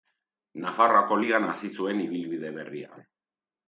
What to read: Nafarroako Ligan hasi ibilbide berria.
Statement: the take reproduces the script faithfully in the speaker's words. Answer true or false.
false